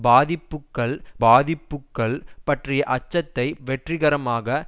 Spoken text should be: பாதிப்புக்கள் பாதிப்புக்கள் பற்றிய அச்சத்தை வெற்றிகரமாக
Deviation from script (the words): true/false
false